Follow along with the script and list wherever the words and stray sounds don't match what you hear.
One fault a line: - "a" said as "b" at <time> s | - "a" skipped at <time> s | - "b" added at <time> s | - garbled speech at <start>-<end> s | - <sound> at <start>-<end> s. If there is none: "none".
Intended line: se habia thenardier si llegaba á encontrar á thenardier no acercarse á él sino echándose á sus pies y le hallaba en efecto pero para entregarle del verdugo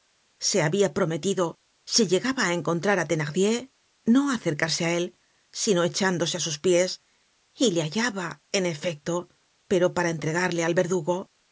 - "thenardier" said as "prometido" at 1.0 s
- "del" said as "al" at 10.6 s